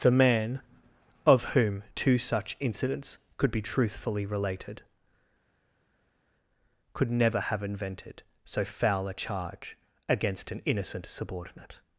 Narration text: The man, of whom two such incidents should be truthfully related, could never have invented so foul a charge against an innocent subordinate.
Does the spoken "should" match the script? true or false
false